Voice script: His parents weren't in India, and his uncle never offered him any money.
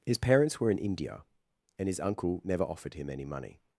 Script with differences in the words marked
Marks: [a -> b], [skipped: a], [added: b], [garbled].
His parents [weren't -> were] in India, and his uncle never offered him any money.